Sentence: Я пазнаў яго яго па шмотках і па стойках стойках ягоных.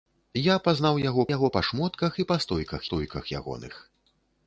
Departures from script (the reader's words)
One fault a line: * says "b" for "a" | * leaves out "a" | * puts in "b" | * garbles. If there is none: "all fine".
all fine